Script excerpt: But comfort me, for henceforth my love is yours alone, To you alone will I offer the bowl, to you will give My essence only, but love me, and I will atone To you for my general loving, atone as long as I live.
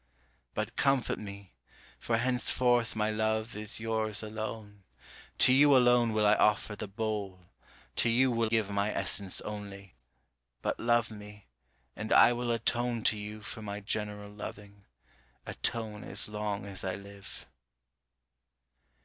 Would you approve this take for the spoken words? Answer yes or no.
yes